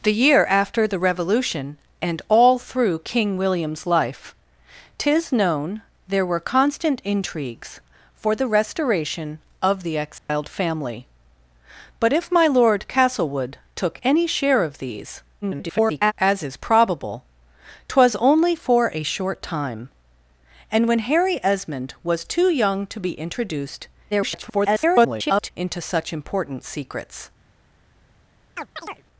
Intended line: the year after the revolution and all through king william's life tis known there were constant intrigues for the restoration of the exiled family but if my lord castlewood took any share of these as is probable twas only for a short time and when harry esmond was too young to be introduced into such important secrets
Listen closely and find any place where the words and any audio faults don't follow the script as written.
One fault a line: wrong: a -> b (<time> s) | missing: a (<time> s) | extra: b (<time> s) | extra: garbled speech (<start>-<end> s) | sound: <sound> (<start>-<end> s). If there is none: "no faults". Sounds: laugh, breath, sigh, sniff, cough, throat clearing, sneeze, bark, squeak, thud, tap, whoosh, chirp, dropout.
sound: dropout (10.2-10.3 s)
extra: garbled speech (15.4-16.1 s)
extra: garbled speech (24.1-25.5 s)
sound: chirp (28.5-29.0 s)